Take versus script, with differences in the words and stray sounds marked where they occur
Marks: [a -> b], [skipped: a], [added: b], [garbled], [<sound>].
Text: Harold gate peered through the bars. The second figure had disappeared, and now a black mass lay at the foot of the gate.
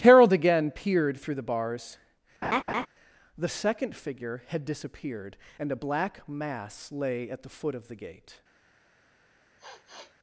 Harold [gate -> again] peered through the bars. [laugh] The second figure had disappeared, and [skipped: now] a black mass lay at the foot of the gate. [sniff]